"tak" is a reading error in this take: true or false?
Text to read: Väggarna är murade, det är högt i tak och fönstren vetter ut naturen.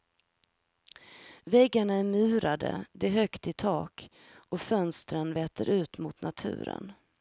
false